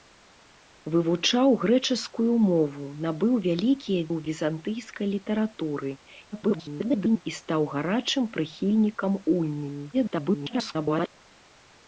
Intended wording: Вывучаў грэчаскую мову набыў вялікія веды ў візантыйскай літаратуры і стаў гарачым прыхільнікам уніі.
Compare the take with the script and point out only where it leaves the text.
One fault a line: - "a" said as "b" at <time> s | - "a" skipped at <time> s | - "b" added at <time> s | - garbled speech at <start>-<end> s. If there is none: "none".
- "веды" skipped at 4.0 s
- garbled speech at 6.3-7.2 s
- garbled speech at 9.9-11.1 s